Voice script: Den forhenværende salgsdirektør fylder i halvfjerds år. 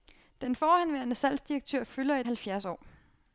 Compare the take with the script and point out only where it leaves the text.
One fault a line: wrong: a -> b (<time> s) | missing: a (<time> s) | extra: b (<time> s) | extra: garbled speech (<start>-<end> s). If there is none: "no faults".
no faults